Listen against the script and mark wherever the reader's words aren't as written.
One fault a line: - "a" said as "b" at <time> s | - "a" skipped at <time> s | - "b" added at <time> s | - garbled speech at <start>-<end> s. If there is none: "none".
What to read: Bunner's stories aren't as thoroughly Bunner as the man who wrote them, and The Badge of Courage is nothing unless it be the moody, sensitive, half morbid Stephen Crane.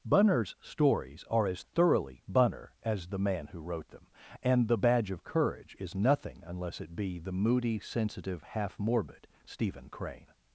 - "aren't" said as "are" at 1.3 s